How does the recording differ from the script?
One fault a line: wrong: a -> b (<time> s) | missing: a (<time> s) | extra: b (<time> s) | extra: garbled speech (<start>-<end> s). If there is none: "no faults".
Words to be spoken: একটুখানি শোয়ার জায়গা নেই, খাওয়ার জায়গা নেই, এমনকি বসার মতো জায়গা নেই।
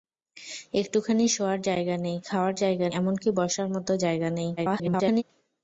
missing: নেই (2.9 s)
extra: garbled speech (4.6-5.2 s)